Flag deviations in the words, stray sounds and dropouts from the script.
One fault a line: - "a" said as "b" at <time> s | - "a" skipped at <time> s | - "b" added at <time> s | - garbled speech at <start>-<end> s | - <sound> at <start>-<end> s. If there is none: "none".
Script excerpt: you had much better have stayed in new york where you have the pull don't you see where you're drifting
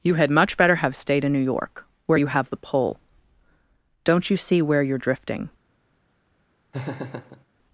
- laugh at 6.7-7.4 s